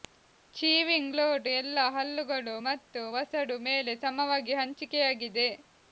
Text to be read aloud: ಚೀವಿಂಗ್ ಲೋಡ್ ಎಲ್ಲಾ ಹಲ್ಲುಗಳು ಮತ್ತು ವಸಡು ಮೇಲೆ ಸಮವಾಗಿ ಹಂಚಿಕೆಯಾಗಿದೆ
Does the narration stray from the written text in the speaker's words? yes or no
no